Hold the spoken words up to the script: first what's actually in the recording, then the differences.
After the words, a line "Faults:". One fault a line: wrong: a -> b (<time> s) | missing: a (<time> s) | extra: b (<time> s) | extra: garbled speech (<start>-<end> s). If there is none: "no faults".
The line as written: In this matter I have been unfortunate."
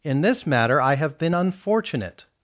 In this matter I have been unfortunate."
Faults:
no faults